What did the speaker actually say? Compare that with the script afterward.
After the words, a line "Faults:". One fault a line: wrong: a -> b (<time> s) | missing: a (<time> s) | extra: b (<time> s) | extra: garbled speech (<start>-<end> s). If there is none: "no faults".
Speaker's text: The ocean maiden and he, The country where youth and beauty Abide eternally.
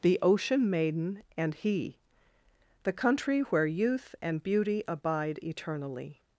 The ocean maiden and he, The country where youth and beauty Abide eternally.
Faults:
no faults